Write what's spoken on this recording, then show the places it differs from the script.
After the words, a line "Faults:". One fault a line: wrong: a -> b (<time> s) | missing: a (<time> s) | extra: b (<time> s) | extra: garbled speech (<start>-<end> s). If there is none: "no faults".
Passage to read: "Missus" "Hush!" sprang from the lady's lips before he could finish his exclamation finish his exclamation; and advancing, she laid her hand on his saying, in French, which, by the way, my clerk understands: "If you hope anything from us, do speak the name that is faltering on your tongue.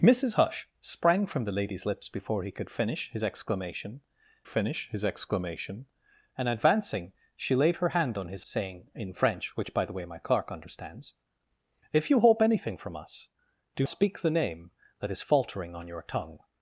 "Missus" "Hush!" sprang from the lady's lips before he could finish his exclamation finish his exclamation; and advancing, she laid her hand on his saying, in French, which, by the way, my clerk understands: "If you hope anything from us, do speak the name that is faltering on your tongue.
Faults:
no faults